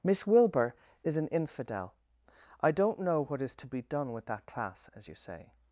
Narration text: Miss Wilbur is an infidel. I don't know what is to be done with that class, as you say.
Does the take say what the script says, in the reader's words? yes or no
yes